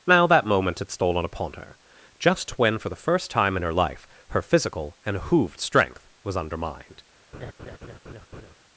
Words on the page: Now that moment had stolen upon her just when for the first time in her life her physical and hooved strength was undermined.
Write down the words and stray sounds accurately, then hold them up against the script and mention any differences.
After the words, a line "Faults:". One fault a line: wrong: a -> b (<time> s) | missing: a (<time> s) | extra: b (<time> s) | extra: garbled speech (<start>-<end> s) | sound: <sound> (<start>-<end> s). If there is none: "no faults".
Now that moment had stolen upon her just when for the first time in her life her physical and hooved strength was undermined.
Faults:
sound: laugh (7.3-8.5 s)